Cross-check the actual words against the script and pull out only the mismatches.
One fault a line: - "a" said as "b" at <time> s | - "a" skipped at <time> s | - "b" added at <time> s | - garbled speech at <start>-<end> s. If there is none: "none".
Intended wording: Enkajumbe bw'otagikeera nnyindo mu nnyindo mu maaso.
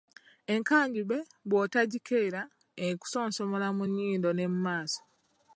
- "nnyindo" said as "ekusonsomola" at 2.9 s
- "ne" added at 4.3 s